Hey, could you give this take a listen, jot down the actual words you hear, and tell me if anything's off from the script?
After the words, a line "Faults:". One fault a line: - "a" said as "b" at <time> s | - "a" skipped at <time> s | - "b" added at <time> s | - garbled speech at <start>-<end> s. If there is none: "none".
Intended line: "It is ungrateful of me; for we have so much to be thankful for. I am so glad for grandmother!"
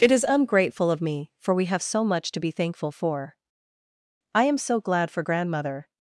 "It is ungrateful of me; for we have so much to be thankful for. I am so glad for grandmother!"
Faults:
none